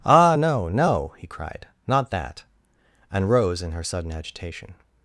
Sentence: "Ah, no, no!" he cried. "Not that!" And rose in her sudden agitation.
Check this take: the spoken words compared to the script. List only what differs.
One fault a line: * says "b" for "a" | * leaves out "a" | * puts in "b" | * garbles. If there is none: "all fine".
all fine